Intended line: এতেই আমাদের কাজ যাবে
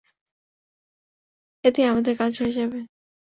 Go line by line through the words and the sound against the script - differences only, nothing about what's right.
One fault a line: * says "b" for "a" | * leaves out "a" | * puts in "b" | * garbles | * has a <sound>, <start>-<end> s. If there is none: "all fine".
* puts in "হয়ে"